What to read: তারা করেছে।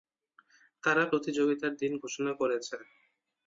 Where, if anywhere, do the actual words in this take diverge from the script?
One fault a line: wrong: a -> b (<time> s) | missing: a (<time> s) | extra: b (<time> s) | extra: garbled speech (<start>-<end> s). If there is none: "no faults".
extra: প্রতিযোগিতার দিন ঘোষণা (1.1 s)